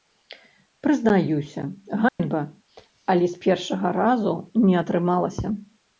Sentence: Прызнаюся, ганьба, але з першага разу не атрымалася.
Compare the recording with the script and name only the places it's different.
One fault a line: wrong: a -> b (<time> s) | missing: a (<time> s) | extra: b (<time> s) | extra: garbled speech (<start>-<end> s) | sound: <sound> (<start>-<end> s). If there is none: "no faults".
sound: dropout (2.1-2.2 s)